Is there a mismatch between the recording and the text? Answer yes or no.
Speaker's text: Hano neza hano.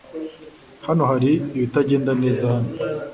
yes